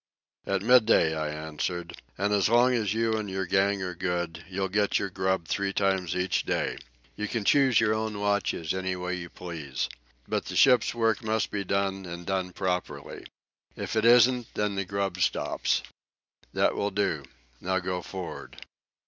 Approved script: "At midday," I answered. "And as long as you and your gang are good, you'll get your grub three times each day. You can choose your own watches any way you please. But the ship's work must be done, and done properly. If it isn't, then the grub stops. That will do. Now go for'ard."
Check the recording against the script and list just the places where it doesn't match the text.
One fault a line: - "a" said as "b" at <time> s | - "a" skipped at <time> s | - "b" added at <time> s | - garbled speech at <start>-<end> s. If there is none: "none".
none